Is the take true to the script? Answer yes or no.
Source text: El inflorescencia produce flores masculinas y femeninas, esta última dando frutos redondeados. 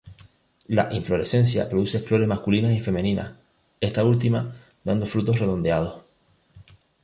no